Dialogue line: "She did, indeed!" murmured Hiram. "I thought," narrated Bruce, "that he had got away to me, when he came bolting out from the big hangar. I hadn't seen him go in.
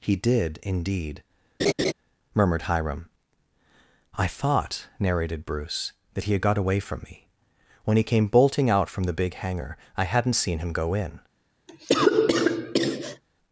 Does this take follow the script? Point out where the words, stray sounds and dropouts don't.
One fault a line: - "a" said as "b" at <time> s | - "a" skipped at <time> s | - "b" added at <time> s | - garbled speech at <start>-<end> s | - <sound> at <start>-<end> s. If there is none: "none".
- "She" said as "He" at 0.0 s
- laugh at 1.6-1.9 s
- "to" said as "from" at 6.8 s
- cough at 11.7-13.2 s